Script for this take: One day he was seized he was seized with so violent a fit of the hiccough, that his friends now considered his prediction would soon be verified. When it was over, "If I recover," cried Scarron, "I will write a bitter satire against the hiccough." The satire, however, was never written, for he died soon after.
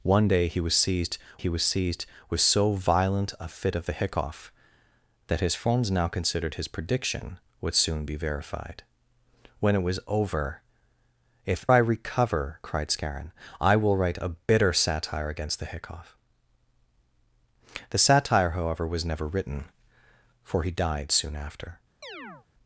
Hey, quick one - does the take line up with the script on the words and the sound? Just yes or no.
no